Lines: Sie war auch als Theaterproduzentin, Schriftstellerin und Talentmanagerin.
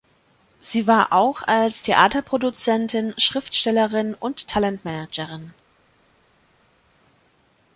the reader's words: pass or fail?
pass